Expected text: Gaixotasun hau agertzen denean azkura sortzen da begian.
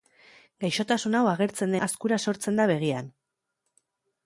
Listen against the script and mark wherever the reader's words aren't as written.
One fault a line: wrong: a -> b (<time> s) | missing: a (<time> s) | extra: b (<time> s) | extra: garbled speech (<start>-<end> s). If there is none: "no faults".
missing: denean (1.8 s)